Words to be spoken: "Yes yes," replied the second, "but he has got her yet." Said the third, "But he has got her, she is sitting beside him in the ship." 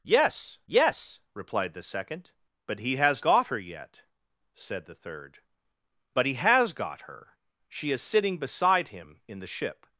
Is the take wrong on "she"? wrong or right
right